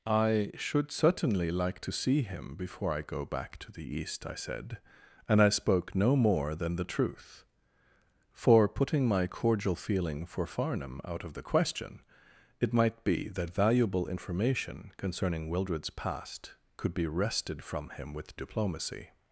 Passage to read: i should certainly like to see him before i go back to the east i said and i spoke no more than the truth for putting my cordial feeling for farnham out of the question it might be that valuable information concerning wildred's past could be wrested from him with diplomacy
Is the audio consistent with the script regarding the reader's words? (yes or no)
yes